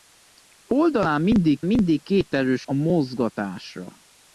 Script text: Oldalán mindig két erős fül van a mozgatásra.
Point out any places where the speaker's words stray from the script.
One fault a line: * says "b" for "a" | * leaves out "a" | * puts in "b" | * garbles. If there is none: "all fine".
* puts in "mindig"
* leaves out "fül van"